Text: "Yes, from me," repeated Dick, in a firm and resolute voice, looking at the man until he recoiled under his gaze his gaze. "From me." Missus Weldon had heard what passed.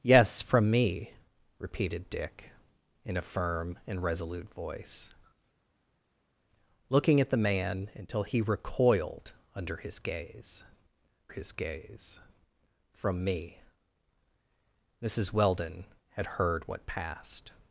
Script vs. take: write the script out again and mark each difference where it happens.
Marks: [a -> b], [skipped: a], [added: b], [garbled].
"Yes, from me," repeated Dick, in a firm and resolute voice, looking at the man until he recoiled under his gaze his gaze. "From me." Missus Weldon had heard what passed.